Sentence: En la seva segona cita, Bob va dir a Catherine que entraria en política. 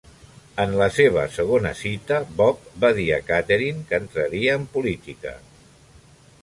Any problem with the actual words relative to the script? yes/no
no